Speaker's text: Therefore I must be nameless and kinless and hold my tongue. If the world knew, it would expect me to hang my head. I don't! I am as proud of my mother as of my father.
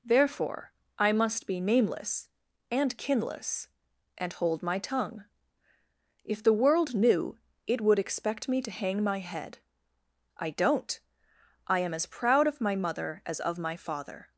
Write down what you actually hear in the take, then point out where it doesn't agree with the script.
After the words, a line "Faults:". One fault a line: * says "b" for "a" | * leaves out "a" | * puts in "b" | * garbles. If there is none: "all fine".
Therefore I must be nameless and kinless and hold my tongue. If the world knew, it would expect me to hang my head. I don't! I am as proud of my mother as of my father.
Faults:
all fine